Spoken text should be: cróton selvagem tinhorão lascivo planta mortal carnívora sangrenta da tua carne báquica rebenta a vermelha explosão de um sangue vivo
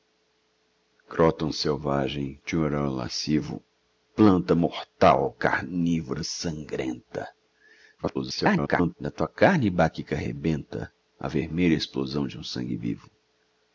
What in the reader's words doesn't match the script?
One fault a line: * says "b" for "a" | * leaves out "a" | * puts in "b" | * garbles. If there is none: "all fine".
* garbles